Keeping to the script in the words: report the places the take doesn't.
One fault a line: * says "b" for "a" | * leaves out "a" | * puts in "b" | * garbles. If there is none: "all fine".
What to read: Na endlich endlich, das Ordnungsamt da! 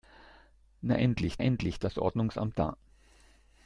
all fine